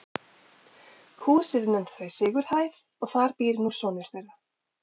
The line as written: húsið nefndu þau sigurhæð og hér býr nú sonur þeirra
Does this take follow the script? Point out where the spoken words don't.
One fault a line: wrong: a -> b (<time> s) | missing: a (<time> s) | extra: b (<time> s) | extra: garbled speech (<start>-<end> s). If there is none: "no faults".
wrong: hér -> þar (3.1 s)